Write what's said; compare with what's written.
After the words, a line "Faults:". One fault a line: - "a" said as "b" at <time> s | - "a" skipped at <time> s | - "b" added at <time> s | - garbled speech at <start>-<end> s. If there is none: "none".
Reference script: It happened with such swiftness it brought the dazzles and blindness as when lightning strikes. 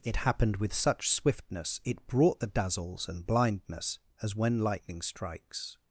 It happened with such swiftness it brought the dazzles and blindness as when lightning strikes.
Faults:
none